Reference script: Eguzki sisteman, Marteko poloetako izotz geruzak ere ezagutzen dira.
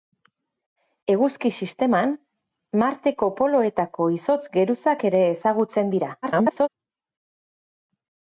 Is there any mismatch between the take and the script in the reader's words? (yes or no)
yes